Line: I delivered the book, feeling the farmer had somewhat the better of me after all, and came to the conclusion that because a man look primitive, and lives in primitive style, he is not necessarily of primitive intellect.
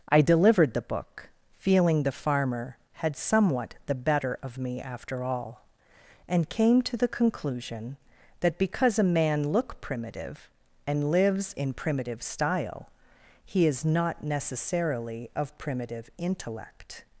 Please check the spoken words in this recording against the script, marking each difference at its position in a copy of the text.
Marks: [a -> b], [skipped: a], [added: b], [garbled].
I delivered the book, feeling the farmer had somewhat the better of me after all, and came to the conclusion that because a man look primitive, and lives in primitive style, he is not necessarily of primitive intellect.